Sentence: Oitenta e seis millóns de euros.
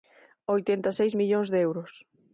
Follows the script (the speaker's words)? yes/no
yes